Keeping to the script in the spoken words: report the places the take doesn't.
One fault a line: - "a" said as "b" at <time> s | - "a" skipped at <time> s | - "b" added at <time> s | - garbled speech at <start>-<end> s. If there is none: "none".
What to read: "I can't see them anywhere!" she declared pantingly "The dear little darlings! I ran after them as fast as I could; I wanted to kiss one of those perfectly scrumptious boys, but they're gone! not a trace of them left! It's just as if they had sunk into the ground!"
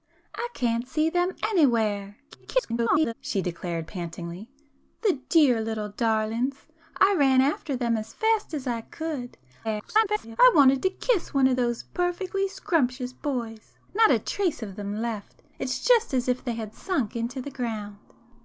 - garbled speech at 2.3-3.1 s
- garbled speech at 9.6-10.4 s
- "but they're gone" skipped at 13.7 s